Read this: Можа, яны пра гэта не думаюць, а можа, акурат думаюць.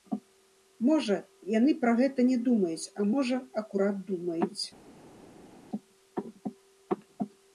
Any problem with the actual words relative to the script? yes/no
no